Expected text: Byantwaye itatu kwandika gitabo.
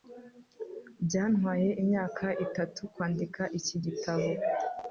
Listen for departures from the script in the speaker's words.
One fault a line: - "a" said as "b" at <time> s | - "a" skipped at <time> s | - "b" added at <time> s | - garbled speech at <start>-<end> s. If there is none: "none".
- "imyaka" added at 1.8 s
- "iki" added at 3.6 s